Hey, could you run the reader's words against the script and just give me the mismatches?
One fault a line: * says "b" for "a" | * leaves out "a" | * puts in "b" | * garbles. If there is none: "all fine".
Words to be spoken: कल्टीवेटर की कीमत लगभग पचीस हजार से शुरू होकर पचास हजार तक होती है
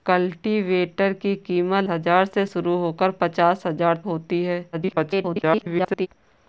* leaves out "लगभग पचीस"
* leaves out "तक"
* garbles